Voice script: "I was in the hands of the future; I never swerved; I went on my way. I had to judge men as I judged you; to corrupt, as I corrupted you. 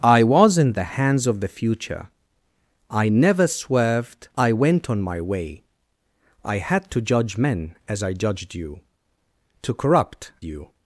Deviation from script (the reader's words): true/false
true